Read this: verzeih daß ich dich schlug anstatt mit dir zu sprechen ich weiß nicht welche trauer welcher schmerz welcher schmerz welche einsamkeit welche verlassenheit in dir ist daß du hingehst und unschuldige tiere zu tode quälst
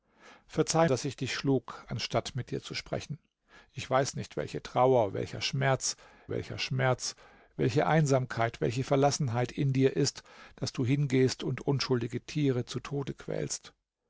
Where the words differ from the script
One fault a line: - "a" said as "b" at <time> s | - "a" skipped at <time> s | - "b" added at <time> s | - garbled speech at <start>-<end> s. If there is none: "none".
none